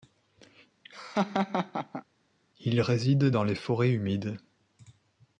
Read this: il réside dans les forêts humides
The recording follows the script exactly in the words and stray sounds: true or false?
false